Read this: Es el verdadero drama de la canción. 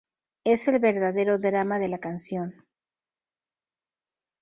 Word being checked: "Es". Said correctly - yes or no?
yes